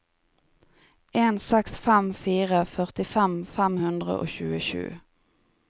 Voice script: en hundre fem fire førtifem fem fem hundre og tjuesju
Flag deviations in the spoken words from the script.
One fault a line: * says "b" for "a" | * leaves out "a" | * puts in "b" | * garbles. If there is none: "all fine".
* says "seks" for "hundre"
* leaves out "fem"